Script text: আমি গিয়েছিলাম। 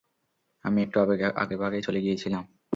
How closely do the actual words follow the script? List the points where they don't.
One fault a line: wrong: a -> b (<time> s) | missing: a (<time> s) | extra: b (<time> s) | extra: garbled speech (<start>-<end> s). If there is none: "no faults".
extra: একটু আগেভাগেই চলে (0.8 s)